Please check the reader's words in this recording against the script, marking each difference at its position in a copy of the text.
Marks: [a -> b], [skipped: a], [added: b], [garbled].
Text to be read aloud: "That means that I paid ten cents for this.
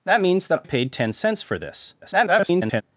"That means that [skipped: I] paid ten cents for this. [garbled]